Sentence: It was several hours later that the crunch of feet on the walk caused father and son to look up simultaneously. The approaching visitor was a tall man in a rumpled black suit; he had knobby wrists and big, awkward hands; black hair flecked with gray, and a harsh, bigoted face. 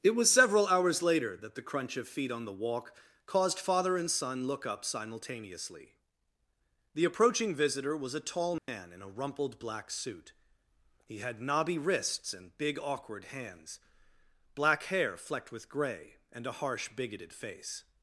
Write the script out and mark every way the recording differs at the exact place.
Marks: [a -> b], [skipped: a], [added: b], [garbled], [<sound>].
It was several hours later that the crunch of feet on the walk caused father and son [skipped: to] look up simultaneously. The approaching visitor was a tall man [dropout] in a rumpled black suit; he had knobby wrists and big, awkward hands; black hair flecked with gray, and a harsh, bigoted face.